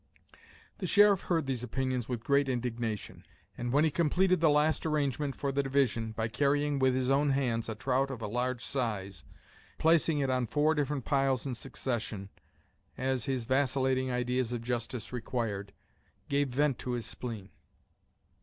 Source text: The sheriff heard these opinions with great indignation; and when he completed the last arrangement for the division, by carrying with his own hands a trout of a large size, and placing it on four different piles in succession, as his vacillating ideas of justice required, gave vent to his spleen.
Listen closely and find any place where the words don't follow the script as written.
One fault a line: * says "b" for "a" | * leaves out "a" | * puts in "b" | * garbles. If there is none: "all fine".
* leaves out "and"